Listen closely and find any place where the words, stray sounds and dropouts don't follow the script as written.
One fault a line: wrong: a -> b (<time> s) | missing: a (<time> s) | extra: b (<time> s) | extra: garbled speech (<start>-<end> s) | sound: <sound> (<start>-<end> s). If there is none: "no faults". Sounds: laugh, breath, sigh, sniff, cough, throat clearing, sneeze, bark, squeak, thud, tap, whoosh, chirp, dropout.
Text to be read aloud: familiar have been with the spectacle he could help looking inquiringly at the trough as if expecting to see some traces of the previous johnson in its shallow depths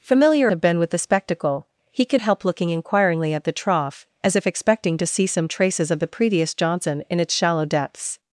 no faults